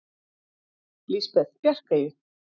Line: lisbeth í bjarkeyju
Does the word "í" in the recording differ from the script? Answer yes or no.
no